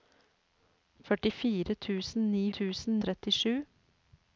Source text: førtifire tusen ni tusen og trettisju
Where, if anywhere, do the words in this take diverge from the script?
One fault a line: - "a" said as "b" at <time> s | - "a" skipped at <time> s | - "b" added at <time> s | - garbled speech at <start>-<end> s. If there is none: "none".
none